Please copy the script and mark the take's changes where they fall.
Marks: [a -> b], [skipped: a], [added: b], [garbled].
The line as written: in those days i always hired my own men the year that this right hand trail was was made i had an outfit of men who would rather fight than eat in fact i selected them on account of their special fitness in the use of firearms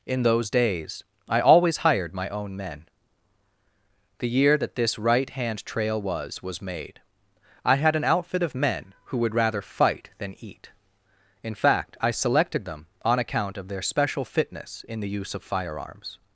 in those days i always hired my own men the year that this right hand trail was was made i had an outfit of men who would rather fight than eat in fact i selected them on account of their special fitness in the use of firearms